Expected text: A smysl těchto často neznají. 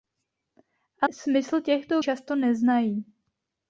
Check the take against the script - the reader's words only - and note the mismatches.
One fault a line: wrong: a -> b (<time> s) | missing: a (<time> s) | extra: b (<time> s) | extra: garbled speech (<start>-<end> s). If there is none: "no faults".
no faults